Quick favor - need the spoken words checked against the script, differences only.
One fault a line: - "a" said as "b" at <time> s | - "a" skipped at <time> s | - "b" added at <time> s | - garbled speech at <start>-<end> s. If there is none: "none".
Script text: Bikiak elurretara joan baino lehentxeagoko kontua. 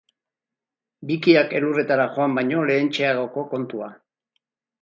none